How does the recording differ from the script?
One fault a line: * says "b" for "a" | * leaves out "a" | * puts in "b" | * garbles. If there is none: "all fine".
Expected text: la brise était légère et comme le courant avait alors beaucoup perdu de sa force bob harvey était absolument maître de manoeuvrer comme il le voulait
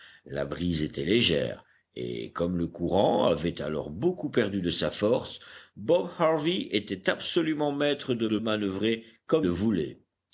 * puts in "de"
* leaves out "il"